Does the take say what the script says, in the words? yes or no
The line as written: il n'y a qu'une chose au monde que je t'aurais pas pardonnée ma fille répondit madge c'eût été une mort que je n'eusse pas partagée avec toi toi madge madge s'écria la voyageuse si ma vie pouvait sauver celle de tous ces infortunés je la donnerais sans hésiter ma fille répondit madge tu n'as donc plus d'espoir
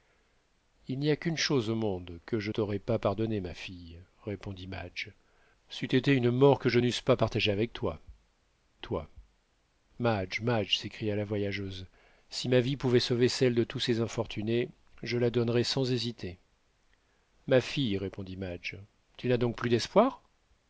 yes